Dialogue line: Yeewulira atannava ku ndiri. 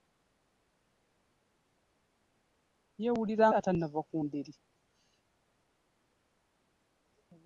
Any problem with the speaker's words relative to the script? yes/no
no